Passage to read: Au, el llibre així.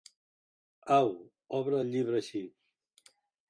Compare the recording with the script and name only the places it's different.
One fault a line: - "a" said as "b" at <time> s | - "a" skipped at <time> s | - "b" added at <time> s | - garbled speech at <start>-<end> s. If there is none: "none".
- "obre" added at 1.6 s